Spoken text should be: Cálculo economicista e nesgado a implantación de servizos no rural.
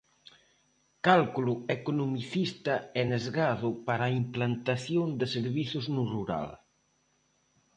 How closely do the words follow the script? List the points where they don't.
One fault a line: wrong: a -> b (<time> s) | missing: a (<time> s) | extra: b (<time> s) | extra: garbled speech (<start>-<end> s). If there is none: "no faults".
extra: para (3.9 s)